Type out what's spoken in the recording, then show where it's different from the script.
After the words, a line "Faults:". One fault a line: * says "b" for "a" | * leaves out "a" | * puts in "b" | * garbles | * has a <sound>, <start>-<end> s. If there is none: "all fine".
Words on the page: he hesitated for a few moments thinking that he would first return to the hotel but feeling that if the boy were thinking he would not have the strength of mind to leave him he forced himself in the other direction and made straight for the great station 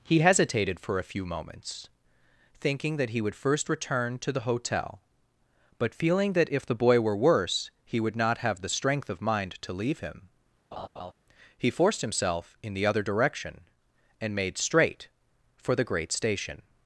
he hesitated for a few moments thinking that he would first return to the hotel but feeling that if the boy were worse he would not have the strength of mind to leave him he forced himself in the other direction and made straight for the great station
Faults:
* says "worse" for "thinking"
* has a laugh, 10.7-11.1 s